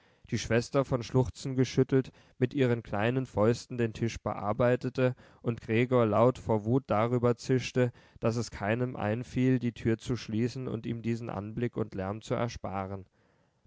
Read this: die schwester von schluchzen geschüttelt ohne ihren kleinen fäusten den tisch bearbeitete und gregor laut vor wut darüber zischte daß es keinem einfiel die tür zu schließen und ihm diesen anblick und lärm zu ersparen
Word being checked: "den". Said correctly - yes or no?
yes